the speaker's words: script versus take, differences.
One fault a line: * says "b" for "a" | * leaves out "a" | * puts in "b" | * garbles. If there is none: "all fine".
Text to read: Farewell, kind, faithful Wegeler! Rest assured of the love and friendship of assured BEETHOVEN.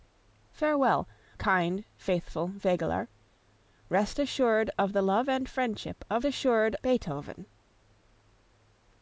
all fine